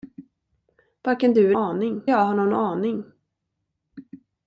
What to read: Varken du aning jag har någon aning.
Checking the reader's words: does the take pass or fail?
pass